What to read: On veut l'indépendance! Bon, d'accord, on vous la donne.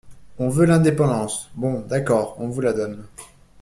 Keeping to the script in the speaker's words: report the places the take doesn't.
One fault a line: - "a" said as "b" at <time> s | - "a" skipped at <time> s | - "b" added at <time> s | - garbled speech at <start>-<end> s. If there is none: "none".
none